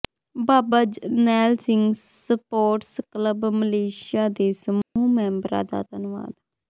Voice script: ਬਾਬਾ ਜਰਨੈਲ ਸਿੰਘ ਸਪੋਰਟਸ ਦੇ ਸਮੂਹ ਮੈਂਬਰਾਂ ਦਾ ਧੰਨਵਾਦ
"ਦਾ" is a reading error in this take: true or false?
false